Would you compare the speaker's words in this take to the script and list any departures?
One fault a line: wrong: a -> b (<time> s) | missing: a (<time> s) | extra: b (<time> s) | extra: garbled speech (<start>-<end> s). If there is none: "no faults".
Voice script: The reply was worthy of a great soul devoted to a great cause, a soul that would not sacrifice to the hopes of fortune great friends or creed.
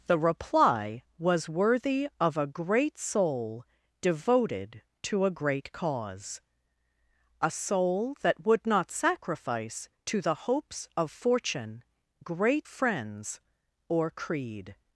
no faults